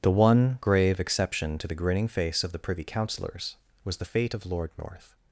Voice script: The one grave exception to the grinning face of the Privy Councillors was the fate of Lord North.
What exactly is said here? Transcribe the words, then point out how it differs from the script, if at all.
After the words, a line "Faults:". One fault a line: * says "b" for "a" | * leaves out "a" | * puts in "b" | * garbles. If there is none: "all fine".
The one grave exception to the grinning face of the Privy Councillors was the fate of Lord North.
Faults:
all fine